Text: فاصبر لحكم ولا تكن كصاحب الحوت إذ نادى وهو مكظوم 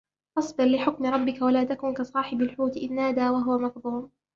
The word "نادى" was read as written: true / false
true